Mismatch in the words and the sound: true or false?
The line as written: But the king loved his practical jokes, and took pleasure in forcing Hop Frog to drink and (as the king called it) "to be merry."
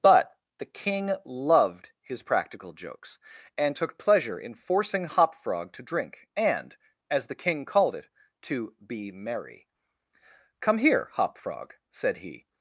true